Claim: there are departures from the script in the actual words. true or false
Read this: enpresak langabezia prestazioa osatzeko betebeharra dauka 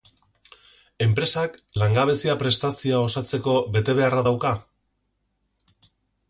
false